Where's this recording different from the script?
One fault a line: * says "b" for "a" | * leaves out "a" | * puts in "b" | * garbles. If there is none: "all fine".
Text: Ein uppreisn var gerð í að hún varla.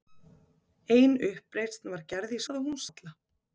all fine